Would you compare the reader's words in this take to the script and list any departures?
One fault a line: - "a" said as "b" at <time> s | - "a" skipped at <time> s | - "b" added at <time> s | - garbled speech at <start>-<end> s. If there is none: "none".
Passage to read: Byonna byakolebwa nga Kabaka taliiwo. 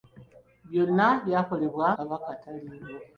- "nga" skipped at 1.9 s